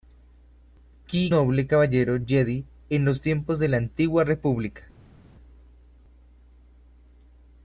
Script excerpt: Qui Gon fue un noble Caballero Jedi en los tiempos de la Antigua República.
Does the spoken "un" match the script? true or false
false